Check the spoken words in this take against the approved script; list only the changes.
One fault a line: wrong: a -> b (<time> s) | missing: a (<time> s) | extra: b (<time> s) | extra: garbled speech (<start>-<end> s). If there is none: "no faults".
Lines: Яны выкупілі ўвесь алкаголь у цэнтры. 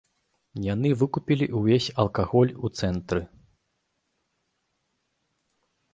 no faults